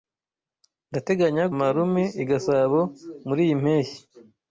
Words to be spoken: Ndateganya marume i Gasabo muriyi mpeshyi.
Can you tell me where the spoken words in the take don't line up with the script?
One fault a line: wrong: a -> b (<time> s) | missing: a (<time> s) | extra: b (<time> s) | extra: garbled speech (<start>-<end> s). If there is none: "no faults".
no faults